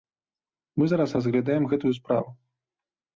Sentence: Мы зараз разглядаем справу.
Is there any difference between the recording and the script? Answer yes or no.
yes